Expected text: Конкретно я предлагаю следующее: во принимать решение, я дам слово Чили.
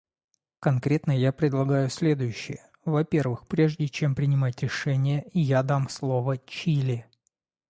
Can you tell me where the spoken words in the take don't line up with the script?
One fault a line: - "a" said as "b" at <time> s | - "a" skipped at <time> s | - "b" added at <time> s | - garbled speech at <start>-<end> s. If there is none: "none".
- "первых прежде чем" added at 3.0 s